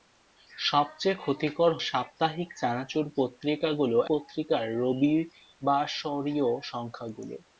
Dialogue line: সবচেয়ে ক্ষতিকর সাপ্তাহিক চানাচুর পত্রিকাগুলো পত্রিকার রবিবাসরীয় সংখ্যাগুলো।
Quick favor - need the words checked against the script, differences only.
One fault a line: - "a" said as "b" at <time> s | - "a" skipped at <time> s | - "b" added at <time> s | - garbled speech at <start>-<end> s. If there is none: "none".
none